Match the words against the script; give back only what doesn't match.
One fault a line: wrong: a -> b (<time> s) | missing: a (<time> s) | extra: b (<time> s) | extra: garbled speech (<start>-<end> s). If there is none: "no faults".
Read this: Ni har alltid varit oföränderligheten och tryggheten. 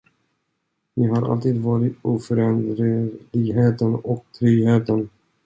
no faults